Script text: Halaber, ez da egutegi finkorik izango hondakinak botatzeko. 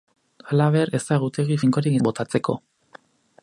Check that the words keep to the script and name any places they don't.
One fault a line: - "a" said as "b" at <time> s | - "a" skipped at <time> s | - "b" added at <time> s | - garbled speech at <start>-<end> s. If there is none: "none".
- "izango hondakinak" skipped at 2.0 s